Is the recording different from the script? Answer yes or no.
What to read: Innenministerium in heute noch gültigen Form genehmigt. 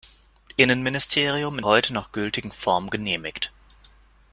no